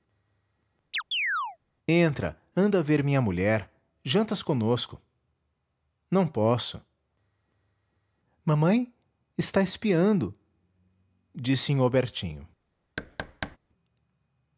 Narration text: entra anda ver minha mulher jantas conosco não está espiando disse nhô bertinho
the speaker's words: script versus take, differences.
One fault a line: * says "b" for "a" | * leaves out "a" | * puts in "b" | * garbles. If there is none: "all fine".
* puts in "posso mamãe"